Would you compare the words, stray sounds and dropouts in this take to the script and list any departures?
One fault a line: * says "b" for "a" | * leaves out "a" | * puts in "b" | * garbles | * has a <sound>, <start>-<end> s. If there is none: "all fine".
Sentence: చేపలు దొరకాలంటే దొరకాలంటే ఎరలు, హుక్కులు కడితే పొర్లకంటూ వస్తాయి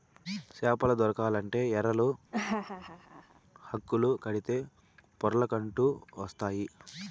* leaves out "దొరకాలంటే"
* has a laugh, 2.3-3.4 s